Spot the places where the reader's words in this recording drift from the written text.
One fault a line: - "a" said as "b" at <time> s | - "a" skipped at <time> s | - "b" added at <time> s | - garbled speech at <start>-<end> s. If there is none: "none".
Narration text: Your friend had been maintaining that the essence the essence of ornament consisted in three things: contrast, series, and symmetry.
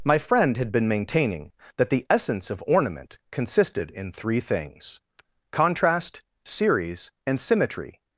- "Your" said as "My" at 0.0 s
- "the essence" skipped at 2.5 s